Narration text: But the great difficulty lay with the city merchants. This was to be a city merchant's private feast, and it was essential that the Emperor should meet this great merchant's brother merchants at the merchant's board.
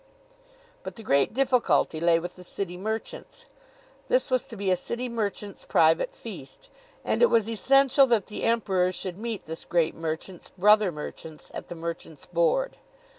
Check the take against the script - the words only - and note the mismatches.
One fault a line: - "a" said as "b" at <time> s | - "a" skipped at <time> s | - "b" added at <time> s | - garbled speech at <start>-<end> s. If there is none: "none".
none